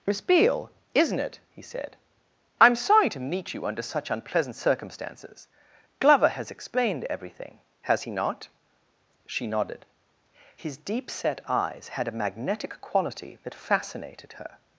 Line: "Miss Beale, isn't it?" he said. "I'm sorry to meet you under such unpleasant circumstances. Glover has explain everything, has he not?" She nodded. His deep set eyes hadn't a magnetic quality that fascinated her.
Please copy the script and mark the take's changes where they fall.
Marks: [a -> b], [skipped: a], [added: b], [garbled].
"Miss Beale, isn't it?" he said. "I'm sorry to meet you under such unpleasant circumstances. Glover has [explain -> explained] everything, has he not?" She nodded. His deep set eyes [hadn't -> had] a magnetic quality that fascinated her.